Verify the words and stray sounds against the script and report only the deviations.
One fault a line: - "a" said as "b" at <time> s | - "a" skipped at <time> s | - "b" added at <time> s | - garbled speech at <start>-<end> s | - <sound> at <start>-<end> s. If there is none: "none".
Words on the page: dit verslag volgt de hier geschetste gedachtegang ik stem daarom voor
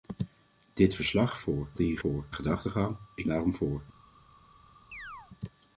- "volgt" said as "voor" at 1.4 s
- "geschetste" said as "voor" at 2.0 s
- "stem" skipped at 3.3 s
- chirp at 4.9-5.3 s